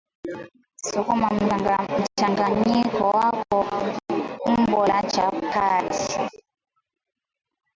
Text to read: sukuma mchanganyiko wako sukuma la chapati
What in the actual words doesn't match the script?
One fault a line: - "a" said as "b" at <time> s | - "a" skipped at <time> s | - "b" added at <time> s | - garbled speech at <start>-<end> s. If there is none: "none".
- "sukuma" said as "umbo" at 4.5 s